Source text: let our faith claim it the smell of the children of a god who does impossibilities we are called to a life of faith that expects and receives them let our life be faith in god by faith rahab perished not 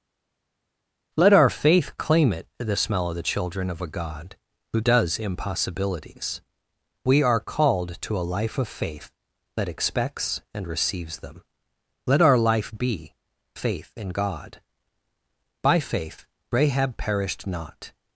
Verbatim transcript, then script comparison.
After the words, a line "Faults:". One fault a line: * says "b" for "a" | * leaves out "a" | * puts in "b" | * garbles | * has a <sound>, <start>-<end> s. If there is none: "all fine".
let our faith claim it the smell of the children of a god who does impossibilities we are called to a life of faith that expects and receives them let our life be faith in god by faith rahab perished not
Faults:
all fine